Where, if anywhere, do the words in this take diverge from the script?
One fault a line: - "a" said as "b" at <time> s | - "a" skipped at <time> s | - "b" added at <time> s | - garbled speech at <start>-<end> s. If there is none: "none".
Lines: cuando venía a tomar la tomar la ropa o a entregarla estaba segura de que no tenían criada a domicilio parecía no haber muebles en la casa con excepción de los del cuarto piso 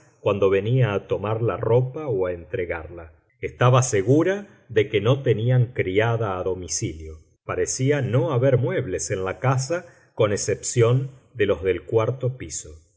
- "tomar la" skipped at 1.6 s